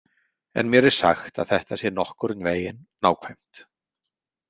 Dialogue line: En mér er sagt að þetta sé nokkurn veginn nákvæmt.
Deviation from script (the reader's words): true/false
false